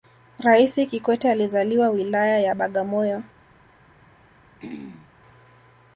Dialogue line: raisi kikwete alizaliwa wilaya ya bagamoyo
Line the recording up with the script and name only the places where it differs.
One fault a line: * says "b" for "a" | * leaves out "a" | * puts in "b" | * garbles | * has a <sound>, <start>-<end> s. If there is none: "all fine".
* has a throat clearing, 4.6-5.1 s